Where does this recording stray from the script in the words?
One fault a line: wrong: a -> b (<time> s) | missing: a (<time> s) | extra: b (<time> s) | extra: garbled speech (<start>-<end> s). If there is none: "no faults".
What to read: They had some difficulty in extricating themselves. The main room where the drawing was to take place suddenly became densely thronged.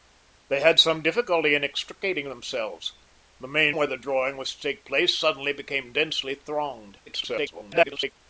missing: room (3.8 s)
extra: garbled speech (7.1-8.1 s)